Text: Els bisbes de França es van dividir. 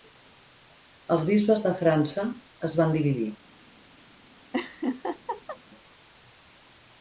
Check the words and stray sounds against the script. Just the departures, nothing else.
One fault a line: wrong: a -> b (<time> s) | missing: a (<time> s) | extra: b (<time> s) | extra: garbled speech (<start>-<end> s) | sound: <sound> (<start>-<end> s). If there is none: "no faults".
sound: laugh (4.5-5.6 s)